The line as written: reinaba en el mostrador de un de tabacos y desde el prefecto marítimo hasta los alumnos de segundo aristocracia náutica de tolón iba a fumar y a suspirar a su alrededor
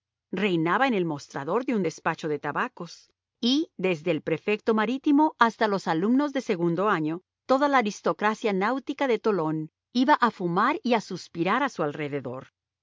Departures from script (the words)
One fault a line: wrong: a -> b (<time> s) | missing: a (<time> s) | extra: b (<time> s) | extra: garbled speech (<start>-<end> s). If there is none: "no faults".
extra: despacho (1.8 s)
extra: año toda la (6.9 s)